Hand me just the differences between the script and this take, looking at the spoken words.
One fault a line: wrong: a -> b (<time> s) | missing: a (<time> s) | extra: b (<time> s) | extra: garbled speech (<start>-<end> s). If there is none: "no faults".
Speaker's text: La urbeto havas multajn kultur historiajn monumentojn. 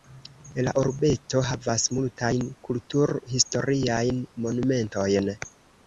no faults